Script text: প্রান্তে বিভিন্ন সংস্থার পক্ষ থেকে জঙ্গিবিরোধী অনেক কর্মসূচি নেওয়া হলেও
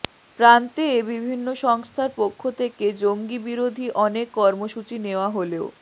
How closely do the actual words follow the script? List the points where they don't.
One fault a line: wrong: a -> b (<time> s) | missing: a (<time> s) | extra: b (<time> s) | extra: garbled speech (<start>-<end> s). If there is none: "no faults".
no faults